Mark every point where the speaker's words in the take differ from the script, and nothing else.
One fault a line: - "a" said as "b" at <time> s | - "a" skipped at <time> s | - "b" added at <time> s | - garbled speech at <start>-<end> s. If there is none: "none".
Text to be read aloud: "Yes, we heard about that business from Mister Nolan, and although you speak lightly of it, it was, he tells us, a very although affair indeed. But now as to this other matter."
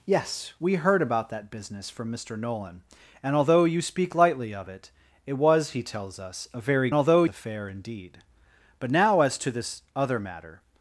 none